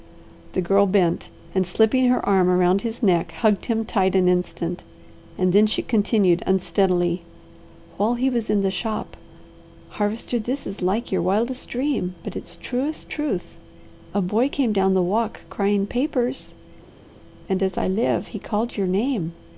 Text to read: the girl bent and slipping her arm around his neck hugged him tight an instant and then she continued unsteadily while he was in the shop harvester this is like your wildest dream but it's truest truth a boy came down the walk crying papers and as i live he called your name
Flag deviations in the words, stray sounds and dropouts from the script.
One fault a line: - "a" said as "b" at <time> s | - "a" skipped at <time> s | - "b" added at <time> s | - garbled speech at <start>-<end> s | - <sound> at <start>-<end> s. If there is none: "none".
none